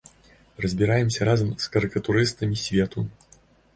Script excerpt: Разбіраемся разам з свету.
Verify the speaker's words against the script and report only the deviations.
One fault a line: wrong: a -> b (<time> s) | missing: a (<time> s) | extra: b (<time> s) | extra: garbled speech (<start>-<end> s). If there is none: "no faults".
extra: карыкатурыстамі (1.8 s)